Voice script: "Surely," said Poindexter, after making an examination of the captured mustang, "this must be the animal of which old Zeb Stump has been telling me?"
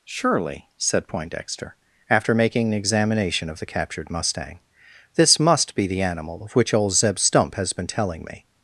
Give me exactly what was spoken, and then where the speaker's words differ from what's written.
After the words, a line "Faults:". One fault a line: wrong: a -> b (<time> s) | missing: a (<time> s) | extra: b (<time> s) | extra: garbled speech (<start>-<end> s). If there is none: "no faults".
"Surely," said Poindexter, after making an examination of the captured mustang, "this must be the animal of which old Zeb Stump has been telling me?"
Faults:
no faults